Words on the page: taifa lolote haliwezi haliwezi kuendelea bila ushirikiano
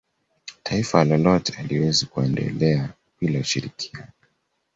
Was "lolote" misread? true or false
false